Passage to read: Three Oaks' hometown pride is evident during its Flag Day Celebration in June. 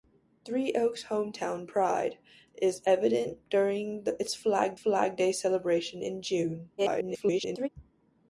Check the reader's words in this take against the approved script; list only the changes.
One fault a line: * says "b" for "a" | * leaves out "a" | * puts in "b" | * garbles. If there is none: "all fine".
* puts in "Flag"
* garbles